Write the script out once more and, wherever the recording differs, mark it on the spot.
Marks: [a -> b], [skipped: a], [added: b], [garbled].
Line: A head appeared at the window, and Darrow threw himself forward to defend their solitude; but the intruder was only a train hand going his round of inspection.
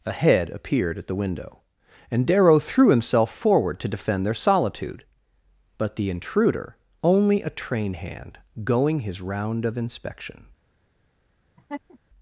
A head appeared at the window, and Darrow threw himself forward to defend their solitude; but the intruder [skipped: was] only a train hand going his round of inspection.